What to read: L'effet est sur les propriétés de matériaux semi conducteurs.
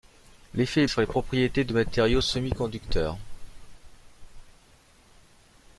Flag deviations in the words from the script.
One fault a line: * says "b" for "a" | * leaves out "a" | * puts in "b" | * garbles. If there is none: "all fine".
all fine